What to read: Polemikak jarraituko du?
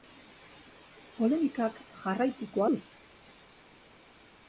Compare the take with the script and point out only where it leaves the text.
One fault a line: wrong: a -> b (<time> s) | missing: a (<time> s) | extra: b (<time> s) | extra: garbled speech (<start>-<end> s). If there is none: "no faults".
no faults